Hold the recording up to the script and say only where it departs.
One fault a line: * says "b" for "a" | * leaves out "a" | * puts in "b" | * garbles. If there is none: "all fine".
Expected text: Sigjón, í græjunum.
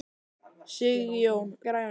all fine